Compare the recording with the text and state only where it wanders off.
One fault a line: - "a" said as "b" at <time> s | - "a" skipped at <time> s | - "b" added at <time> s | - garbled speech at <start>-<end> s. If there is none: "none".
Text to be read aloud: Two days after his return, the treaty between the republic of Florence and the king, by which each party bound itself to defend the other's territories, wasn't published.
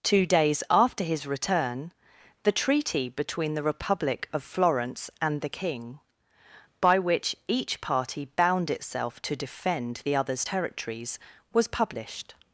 - "wasn't" said as "was" at 11.5 s